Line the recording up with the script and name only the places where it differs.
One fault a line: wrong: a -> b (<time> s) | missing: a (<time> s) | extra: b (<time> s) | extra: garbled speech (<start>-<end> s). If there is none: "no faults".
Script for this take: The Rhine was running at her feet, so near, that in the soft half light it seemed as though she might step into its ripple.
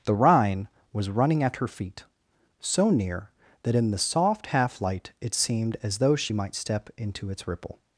no faults